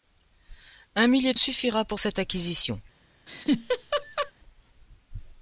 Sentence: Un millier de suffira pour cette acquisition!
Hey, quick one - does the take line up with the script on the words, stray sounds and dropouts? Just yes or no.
no